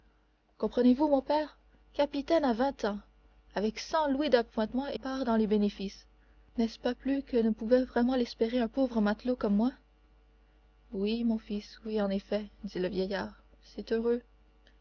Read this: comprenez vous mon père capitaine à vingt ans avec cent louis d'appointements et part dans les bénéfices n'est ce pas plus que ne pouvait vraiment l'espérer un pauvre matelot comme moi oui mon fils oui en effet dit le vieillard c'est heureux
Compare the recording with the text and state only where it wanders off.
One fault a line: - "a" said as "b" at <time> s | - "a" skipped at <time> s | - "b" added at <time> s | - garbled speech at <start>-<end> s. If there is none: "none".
none